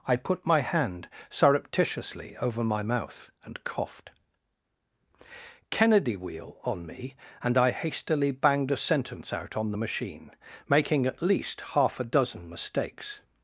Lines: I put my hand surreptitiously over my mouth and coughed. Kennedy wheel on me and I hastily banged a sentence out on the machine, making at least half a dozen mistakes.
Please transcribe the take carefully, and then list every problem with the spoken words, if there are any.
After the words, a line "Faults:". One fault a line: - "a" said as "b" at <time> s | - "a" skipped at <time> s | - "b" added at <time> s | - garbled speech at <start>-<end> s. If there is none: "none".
I put my hand surreptitiously over my mouth and coughed. Kennedy wheel on me and I hastily banged a sentence out on the machine, making at least half a dozen mistakes.
Faults:
none